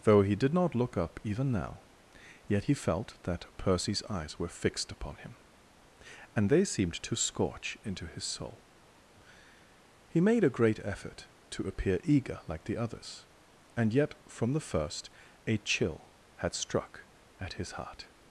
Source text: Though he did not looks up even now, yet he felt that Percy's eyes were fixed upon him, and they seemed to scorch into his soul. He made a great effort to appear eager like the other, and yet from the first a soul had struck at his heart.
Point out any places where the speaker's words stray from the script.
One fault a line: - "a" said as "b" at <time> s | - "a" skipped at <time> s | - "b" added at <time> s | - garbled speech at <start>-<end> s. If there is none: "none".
- "looks" said as "look" at 0.8 s
- "other" said as "others" at 12.8 s
- "soul" said as "chill" at 15.6 s